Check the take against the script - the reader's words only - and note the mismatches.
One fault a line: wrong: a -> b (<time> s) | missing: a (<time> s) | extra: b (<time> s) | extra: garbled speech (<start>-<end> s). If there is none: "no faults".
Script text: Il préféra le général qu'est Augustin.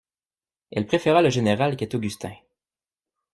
wrong: Il -> Elle (0.7 s)